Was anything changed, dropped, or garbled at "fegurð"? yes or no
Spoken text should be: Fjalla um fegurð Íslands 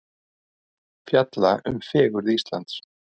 no